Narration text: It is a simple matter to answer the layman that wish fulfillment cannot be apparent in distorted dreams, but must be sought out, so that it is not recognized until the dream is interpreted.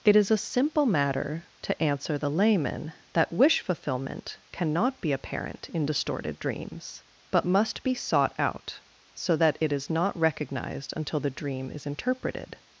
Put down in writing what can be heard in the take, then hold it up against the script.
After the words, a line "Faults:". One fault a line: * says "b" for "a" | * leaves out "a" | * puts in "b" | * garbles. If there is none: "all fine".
It is a simple matter to answer the layman that wish fulfillment cannot be apparent in distorted dreams, but must be sought out, so that it is not recognized until the dream is interpreted.
Faults:
all fine